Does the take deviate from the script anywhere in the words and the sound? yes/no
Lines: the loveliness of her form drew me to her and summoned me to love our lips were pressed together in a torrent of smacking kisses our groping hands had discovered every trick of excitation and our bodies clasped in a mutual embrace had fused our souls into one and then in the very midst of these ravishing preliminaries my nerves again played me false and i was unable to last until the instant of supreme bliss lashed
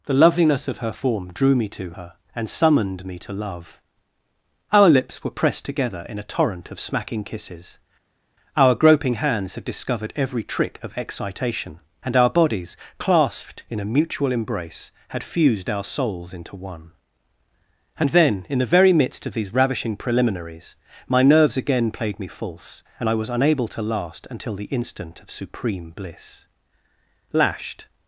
no